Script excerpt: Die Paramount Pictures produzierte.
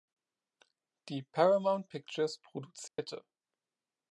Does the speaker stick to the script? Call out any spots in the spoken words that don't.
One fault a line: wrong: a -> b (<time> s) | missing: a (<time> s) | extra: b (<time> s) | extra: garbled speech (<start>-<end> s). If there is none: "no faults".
no faults